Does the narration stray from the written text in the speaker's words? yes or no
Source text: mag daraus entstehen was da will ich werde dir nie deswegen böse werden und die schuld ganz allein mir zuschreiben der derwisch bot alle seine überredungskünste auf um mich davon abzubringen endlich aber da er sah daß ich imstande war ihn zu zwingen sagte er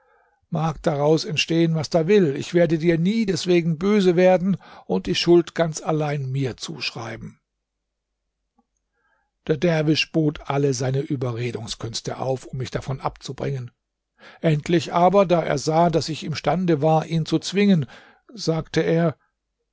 no